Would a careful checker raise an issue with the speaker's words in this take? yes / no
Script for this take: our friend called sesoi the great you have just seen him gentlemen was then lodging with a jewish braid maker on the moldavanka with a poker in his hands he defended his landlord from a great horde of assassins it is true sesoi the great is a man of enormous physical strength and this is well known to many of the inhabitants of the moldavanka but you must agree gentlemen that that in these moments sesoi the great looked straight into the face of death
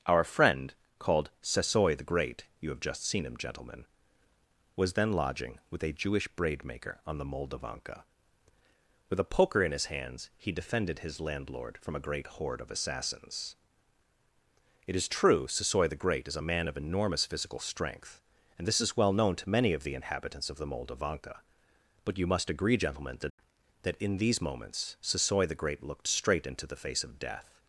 no